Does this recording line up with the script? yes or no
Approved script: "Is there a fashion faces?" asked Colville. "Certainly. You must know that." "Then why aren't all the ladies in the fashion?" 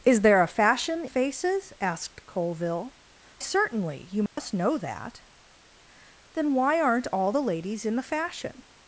yes